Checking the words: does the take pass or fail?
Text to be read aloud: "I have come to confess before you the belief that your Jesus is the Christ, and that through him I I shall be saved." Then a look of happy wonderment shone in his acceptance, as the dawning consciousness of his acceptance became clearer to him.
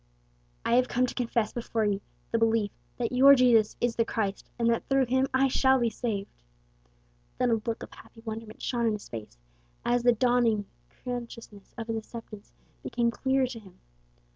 fail